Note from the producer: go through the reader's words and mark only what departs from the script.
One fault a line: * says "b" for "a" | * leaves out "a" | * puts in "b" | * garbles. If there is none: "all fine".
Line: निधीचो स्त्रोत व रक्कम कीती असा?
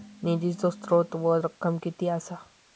all fine